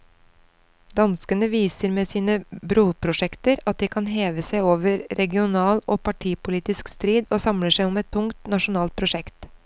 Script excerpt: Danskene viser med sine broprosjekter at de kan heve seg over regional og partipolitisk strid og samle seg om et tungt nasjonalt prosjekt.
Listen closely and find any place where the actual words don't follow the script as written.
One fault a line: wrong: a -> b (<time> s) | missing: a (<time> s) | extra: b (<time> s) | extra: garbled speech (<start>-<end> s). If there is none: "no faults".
no faults